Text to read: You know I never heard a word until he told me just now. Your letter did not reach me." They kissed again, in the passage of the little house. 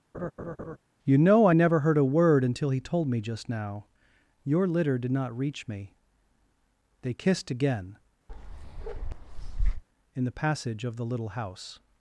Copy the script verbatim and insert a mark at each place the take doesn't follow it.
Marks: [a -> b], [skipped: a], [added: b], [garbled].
You know I never heard a word until he told me just now. Your [letter -> litter] did not reach me." They kissed again, in the passage of the little house.